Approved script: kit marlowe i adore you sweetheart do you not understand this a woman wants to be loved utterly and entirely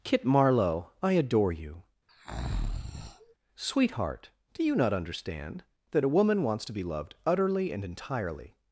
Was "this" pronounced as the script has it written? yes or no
no